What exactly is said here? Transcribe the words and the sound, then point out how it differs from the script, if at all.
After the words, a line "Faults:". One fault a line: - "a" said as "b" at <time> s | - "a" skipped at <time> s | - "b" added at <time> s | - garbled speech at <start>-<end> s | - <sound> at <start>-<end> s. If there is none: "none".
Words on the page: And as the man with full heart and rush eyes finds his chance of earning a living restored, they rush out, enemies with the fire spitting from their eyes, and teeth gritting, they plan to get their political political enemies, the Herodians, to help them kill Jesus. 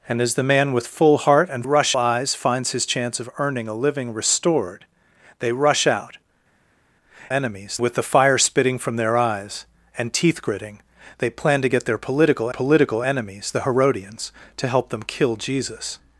And as the man with full heart and rush eyes finds his chance of earning a living restored, they rush out, enemies with the fire spitting from their eyes, and teeth gritting, they plan to get their political political enemies, the Herodians, to help them kill Jesus.
Faults:
none